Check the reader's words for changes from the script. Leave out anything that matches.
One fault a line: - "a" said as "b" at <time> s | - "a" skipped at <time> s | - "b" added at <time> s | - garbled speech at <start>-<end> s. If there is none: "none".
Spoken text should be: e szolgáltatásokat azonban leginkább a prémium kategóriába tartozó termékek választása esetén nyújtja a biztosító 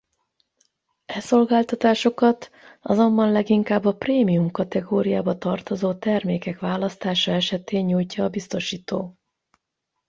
none